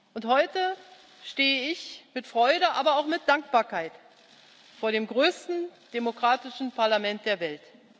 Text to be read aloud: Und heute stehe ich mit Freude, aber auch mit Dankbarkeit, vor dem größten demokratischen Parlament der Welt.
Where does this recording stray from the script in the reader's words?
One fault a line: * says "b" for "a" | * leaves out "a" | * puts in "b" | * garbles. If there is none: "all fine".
all fine